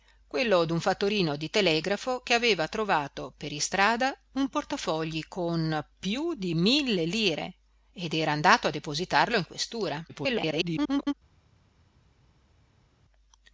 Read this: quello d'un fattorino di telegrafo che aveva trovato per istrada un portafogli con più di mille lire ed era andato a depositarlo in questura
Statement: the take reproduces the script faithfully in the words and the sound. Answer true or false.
false